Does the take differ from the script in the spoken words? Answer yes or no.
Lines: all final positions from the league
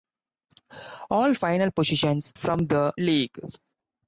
no